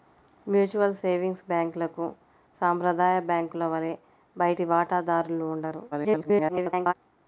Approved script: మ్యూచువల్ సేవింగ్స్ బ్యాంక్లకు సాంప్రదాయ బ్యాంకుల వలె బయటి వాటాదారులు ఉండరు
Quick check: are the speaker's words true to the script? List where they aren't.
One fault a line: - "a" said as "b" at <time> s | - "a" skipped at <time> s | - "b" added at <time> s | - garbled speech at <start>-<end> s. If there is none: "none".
- garbled speech at 5.9-6.9 s